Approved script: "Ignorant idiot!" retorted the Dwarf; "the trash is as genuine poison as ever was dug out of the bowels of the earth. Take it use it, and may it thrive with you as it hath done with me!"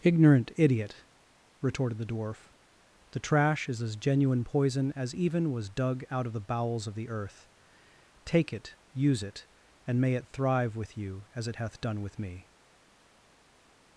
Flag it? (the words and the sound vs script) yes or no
yes